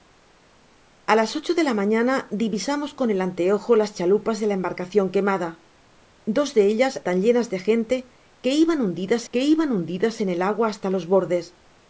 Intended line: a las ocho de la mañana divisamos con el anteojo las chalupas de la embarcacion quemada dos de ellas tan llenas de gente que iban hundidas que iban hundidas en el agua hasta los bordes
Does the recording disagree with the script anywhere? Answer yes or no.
no